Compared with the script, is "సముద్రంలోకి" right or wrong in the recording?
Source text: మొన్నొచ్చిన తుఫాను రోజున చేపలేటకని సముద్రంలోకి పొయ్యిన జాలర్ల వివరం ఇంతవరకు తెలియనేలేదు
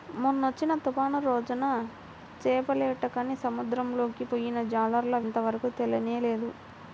right